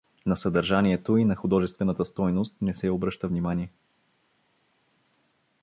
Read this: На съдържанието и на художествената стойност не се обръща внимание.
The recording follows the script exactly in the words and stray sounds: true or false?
true